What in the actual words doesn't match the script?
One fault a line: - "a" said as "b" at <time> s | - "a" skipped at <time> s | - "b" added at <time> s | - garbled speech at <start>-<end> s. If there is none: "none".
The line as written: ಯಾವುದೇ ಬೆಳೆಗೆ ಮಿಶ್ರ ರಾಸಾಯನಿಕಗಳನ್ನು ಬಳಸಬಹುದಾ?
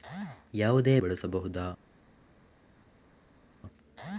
- "ಬೆಳೆಗೆ ಮಿಶ್ರ ರಾಸಾಯನಿಕಗಳನ್ನು" skipped at 1.0 s